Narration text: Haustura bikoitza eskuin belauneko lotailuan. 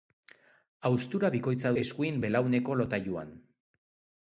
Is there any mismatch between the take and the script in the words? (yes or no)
no